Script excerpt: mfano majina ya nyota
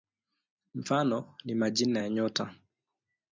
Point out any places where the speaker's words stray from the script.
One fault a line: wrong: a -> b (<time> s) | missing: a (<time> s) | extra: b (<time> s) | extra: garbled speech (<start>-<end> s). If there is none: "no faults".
extra: ni (1.4 s)